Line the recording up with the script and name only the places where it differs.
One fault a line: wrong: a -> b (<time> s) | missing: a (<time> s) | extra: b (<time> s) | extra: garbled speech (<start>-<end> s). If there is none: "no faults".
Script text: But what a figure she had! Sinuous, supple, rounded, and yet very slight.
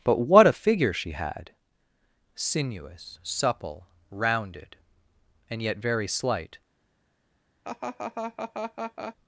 no faults